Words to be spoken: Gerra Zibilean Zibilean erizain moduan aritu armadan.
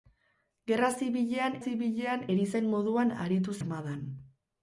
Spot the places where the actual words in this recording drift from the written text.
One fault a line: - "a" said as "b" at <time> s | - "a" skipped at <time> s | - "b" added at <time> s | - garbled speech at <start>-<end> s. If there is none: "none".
none